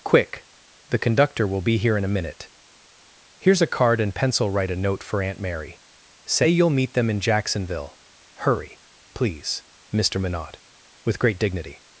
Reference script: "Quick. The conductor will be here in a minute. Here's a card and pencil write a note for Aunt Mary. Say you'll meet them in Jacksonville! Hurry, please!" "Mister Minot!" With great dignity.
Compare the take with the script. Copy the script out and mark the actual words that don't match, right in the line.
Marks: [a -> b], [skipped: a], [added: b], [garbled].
"Quick. The conductor will be here in a minute. Here's a card and pencil write a note for Aunt Mary. Say you'll meet them in Jacksonville! Hurry, please!" "Mister Minot!" With great dignity.